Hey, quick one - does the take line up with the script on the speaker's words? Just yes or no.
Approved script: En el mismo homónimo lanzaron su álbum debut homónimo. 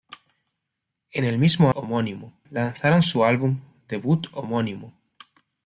yes